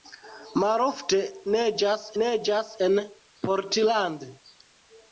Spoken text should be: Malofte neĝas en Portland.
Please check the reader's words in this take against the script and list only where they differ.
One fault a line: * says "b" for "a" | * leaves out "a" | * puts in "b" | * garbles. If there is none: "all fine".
* puts in "neĝas"